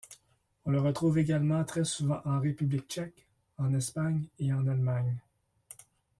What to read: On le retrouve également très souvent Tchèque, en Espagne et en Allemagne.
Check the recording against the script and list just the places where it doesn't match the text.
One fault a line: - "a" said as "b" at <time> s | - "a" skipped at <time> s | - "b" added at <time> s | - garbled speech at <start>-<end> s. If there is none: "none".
- "en République" added at 2.2 s